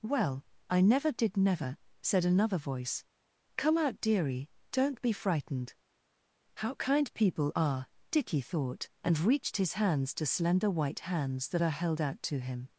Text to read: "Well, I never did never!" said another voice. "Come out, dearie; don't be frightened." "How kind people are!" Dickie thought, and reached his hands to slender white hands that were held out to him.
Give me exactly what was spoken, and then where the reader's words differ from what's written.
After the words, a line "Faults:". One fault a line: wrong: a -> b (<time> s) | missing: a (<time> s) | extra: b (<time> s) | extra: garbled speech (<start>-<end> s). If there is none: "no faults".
"Well, I never did never!" said another voice. "Come out, dearie; don't be frightened." "How kind people are!" Dickie thought, and reached his hands to slender white hands that are held out to him.
Faults:
wrong: were -> are (11.6 s)